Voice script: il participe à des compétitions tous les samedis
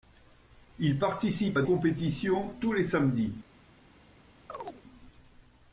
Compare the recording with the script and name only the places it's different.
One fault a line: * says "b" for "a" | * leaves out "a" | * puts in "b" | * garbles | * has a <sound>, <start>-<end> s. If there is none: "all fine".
* leaves out "des"
* has a chirp, 4.5-4.8 s